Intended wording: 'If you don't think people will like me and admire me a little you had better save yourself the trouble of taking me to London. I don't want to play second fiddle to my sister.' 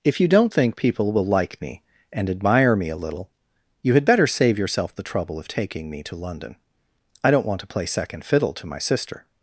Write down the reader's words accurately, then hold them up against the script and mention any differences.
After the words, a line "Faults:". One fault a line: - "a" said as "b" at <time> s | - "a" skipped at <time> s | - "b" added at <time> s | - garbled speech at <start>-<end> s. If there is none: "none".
'If you don't think people will like me and admire me a little you had better save yourself the trouble of taking me to London. I don't want to play second fiddle to my sister.'
Faults:
none